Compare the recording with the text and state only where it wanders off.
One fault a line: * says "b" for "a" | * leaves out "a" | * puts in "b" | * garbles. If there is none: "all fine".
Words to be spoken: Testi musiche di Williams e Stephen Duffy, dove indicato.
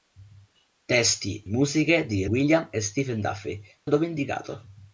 all fine